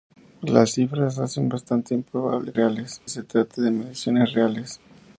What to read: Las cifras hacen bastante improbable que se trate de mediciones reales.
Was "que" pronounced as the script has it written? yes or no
no